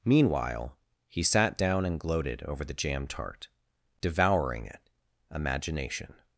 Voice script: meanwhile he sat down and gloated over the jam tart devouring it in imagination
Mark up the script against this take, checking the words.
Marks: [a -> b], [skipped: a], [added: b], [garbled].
meanwhile he sat down and gloated over the jam tart devouring it [skipped: in] imagination